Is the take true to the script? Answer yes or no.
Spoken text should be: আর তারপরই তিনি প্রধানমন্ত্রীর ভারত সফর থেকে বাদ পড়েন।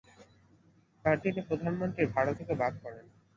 no